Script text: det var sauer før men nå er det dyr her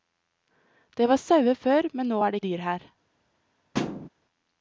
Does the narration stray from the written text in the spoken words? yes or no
no